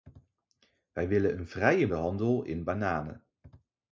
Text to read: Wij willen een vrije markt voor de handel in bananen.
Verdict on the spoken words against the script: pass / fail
fail